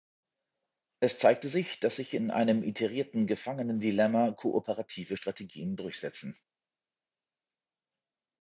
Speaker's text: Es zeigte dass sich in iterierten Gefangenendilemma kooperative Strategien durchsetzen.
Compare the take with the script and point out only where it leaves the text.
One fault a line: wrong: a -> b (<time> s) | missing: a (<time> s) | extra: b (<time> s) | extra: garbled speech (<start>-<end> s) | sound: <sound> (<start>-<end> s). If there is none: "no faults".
extra: sich (1.5 s)
extra: einem (2.3 s)